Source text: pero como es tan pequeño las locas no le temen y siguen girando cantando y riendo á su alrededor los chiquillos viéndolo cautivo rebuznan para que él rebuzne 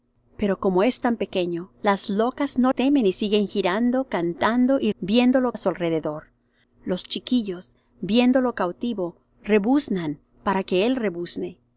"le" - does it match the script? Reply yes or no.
no